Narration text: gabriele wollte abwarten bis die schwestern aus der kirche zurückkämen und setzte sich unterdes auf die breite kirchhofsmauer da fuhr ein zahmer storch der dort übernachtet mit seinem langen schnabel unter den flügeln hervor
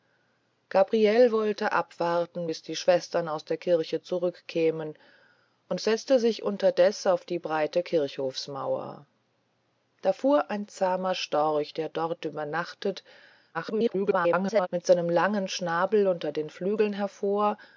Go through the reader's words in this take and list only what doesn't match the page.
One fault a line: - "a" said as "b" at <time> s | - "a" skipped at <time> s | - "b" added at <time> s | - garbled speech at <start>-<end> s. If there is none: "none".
- garbled speech at 13.5-14.7 s